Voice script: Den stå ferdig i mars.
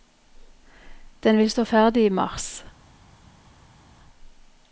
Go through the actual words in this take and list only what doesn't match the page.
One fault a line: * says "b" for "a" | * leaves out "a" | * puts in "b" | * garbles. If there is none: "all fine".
* puts in "vil"